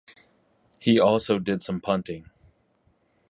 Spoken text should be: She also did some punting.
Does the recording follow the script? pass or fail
fail